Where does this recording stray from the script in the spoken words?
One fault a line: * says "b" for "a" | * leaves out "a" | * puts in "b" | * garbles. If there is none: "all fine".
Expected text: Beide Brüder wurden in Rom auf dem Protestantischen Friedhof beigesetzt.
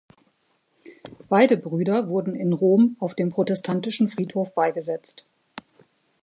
all fine